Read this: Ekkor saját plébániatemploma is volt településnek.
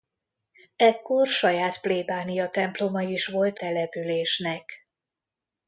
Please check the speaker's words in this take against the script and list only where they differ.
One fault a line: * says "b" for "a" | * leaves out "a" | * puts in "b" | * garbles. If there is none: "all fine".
all fine